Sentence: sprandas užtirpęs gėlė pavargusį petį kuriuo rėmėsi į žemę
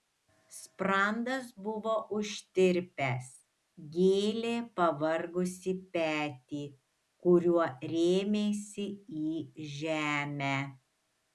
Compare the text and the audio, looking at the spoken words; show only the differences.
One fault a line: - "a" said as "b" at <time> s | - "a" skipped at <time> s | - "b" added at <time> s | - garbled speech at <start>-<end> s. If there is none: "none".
- "buvo" added at 1.6 s